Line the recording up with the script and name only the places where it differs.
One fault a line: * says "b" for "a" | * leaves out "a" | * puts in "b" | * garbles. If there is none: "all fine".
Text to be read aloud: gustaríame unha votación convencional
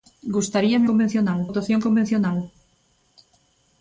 * says "convencional" for "unha"